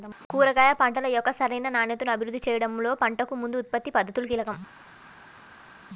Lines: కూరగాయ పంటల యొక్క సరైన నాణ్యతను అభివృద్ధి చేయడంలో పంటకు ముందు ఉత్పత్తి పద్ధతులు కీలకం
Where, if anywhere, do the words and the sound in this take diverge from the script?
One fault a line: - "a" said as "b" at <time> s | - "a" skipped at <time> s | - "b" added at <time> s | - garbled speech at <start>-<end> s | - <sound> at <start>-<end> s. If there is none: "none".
none